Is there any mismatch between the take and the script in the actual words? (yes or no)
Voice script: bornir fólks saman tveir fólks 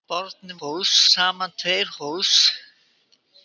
no